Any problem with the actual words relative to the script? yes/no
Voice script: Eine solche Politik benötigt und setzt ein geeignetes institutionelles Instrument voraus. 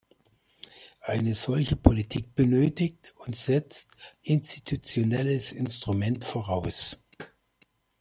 yes